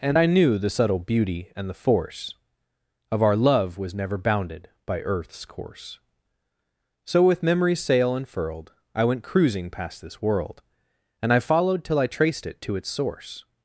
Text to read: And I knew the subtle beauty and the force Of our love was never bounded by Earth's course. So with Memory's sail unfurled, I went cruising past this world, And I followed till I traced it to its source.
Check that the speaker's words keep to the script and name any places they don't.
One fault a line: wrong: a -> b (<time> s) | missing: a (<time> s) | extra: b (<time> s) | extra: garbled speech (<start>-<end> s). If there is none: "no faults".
no faults